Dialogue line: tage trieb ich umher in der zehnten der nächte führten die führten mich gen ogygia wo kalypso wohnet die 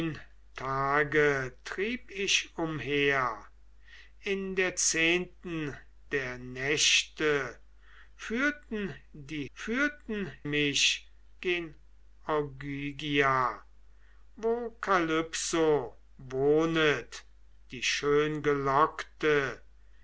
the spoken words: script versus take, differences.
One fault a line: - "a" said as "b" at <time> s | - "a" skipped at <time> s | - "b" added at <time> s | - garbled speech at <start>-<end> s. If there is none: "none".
none